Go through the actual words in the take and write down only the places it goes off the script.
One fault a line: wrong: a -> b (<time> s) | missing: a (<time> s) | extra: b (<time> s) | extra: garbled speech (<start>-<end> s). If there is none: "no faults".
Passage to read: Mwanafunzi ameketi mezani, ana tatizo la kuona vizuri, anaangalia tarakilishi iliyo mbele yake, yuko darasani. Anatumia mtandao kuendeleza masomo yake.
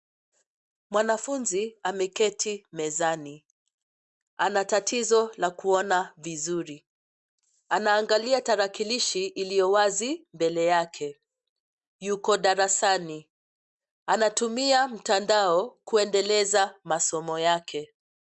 extra: wazi (9.7 s)